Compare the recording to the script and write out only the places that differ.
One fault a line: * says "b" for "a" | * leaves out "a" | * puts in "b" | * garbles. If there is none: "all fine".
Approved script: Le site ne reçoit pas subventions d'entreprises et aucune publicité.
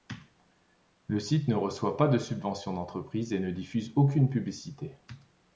* puts in "de"
* puts in "ne diffuse"